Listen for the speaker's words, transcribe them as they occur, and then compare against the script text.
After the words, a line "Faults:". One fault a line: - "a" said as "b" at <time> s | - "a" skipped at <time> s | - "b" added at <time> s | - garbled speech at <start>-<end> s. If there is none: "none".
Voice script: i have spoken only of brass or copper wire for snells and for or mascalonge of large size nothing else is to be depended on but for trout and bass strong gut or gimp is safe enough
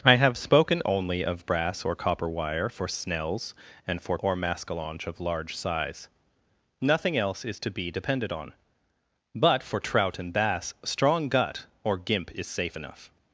i have spoken only of brass or copper wire for snells and for or mascalonge of large size nothing else is to be depended on but for trout and bass strong gut or gimp is safe enough
Faults:
none